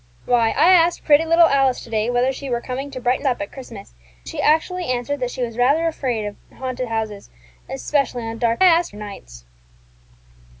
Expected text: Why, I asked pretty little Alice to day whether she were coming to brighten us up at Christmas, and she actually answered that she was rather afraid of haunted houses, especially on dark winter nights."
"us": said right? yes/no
no